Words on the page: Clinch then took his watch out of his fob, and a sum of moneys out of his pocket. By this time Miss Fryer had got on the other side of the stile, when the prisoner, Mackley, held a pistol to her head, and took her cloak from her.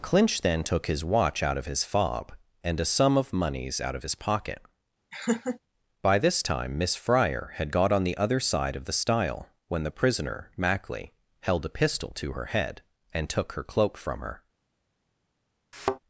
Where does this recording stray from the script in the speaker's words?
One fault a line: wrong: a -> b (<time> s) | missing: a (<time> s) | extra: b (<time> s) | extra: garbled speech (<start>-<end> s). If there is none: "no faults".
no faults